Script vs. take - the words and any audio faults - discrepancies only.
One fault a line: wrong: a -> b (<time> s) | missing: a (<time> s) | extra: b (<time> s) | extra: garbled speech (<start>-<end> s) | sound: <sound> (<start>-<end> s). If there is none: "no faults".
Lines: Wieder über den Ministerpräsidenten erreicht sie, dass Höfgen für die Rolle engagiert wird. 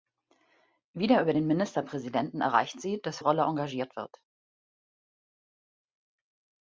missing: Höfgen für die (3.2 s)